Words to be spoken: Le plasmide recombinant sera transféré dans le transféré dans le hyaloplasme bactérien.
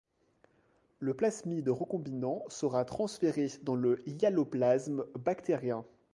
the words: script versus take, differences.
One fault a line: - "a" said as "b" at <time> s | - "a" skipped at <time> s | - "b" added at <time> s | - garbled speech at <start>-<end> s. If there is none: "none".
- "transféré dans le" skipped at 4.0 s